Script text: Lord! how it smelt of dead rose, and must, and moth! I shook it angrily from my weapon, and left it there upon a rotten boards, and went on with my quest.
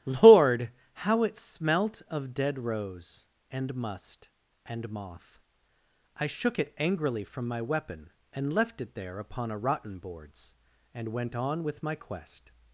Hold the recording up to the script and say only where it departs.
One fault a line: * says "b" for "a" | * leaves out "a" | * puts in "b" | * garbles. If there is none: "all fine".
all fine